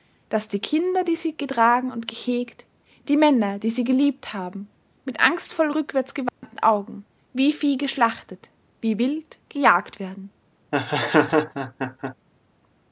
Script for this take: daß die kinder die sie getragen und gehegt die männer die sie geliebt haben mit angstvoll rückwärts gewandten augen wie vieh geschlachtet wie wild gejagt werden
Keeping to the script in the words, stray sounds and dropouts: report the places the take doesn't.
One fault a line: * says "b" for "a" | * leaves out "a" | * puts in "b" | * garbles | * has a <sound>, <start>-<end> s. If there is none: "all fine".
* has a dropout, 6.3-6.4 s
* has a laugh, 10.7-12.2 s